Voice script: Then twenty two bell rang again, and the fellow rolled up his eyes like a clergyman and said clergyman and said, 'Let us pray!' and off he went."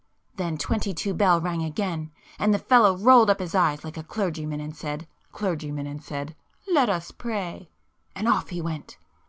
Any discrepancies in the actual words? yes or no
no